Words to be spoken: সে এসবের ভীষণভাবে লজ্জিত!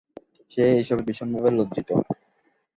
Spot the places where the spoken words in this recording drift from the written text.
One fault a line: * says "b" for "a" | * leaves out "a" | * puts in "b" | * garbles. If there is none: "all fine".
all fine